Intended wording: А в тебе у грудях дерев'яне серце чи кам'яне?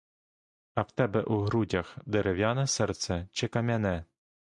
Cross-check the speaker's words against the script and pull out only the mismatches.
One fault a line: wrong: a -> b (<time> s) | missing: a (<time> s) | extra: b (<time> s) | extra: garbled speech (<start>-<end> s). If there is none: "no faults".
no faults